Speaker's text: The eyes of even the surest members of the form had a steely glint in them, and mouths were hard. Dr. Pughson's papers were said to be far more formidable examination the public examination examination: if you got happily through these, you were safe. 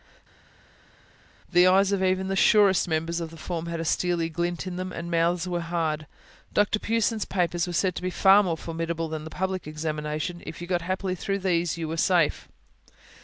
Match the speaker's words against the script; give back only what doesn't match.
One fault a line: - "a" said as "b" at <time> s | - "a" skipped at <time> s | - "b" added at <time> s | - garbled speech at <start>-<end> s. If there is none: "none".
- "examination" said as "than" at 9.1 s
- "examination" skipped at 10.4 s